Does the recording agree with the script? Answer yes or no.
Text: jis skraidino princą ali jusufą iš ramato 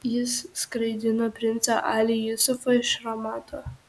yes